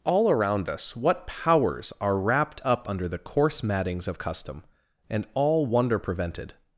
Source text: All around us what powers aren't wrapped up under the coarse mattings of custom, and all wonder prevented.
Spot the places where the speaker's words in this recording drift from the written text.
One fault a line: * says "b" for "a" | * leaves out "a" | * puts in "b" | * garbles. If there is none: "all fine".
* says "are" for "aren't"